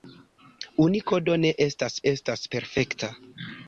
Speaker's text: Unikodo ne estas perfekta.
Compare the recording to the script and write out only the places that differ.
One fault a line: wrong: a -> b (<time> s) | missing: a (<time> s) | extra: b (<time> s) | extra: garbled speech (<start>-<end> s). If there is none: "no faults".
extra: estas (2.1 s)